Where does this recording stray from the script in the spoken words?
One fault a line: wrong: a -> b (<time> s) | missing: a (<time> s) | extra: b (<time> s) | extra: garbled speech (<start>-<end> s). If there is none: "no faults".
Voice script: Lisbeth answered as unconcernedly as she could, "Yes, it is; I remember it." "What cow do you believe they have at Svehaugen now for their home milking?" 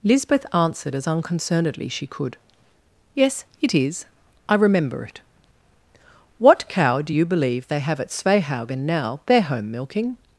missing: as (1.9 s)
missing: for (9.2 s)